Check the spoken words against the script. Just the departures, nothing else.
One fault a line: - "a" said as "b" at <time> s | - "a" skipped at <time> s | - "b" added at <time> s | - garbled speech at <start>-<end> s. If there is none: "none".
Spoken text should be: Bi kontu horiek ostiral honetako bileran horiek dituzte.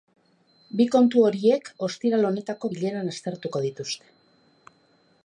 - "horiek" said as "aztertuko" at 3.1 s